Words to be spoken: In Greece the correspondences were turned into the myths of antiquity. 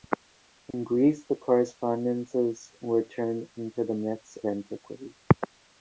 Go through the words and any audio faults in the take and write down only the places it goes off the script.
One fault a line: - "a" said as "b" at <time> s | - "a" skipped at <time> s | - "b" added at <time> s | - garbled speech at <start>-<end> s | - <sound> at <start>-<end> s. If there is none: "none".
- dropout at 0.7-0.7 s
- "of" skipped at 4.3 s